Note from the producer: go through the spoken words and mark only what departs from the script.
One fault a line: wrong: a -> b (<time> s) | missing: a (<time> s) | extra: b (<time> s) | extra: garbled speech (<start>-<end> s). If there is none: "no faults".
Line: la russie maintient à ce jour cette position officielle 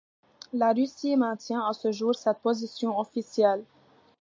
no faults